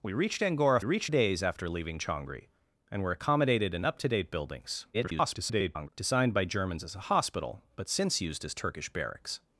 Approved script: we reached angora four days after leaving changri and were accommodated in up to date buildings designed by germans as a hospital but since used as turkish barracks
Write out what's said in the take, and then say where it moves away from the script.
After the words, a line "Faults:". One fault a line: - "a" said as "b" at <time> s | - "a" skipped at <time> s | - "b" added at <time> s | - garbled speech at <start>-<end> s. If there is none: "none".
we reached angora reached days after leaving changri and were accommodated in up to date buildings [garbled] designed by germans as a hospital but since used as turkish barracks
Faults:
- "four" said as "reached" at 0.8 s
- garbled speech at 4.9-5.9 s